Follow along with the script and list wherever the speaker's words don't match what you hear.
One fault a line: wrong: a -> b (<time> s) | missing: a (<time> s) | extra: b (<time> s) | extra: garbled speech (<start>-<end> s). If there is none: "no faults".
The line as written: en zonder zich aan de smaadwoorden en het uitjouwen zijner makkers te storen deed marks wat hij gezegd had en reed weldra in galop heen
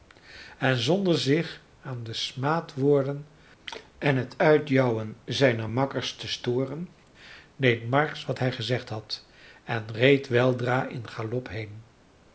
no faults